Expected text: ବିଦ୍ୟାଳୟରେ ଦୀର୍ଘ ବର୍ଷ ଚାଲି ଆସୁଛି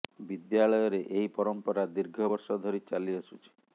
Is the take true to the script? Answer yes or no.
no